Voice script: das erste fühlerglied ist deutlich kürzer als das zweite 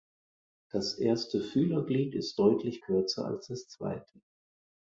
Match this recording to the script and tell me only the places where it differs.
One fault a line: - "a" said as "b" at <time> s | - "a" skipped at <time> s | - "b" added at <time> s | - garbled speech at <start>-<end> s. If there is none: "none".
none